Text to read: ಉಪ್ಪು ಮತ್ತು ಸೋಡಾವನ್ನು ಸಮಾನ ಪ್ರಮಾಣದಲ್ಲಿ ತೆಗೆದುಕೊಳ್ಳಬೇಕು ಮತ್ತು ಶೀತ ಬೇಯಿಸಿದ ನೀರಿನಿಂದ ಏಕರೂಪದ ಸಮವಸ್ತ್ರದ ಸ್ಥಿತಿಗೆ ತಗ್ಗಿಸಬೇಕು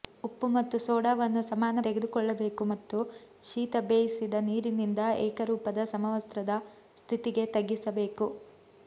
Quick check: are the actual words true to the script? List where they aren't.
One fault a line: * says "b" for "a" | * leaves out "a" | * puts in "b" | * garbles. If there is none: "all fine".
* leaves out "ಪ್ರಮಾಣದಲ್ಲಿ"